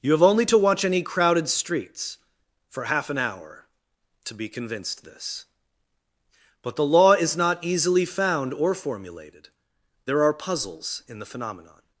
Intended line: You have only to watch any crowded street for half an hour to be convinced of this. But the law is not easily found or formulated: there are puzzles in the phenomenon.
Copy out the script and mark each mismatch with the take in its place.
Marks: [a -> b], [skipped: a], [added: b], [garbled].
You have only to watch any crowded [street -> streets] for half an hour to be convinced [skipped: of] this. But the law is not easily found or formulated: there are puzzles in the phenomenon.